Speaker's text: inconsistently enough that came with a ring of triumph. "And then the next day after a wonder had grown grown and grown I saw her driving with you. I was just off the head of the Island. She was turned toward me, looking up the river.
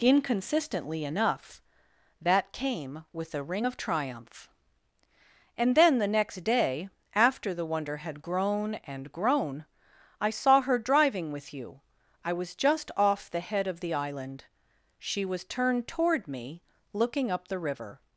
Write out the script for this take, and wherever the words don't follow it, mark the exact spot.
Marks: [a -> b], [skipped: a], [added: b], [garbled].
inconsistently enough that came with a ring of triumph. "And then the next day after [a -> the] wonder had grown [skipped: grown] and grown I saw her driving with you. I was just off the head of the Island. She was turned toward me, looking up the river.